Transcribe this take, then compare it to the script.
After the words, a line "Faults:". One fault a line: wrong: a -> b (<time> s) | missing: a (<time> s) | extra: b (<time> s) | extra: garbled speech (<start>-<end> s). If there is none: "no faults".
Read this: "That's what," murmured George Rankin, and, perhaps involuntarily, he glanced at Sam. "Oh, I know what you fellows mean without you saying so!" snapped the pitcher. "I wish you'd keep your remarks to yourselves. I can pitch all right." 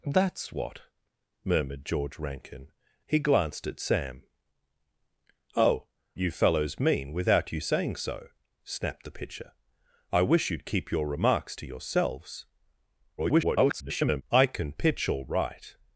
"That's what," murmured George Rankin, he glanced at Sam. "Oh, you fellows mean without you saying so!" snapped the pitcher. "I wish you'd keep your remarks to yourselves. [garbled] I can pitch all right."
Faults:
missing: and perhaps involuntarily (2.7 s)
missing: I know what (5.9 s)
extra: garbled speech (13.2-14.2 s)